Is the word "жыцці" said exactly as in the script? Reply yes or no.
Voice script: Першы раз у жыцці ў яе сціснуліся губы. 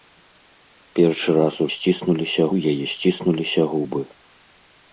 no